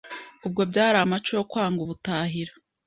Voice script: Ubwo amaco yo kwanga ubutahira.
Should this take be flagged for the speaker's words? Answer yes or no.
yes